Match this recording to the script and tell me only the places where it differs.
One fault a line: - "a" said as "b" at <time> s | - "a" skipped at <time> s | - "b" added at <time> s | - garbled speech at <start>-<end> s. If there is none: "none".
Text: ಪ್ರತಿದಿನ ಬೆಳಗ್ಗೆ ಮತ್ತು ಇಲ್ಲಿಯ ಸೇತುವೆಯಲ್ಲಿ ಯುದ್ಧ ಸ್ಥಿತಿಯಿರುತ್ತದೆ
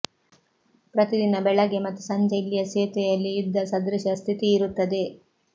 - "ಸಂಜೆ" added at 2.0 s
- "ಸದೃಶ" added at 3.6 s